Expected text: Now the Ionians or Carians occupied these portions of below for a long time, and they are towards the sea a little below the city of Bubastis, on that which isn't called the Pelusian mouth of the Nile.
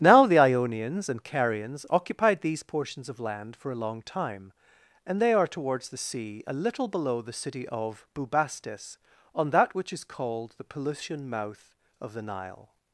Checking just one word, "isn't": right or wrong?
wrong